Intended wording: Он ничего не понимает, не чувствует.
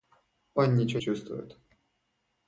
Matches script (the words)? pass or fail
fail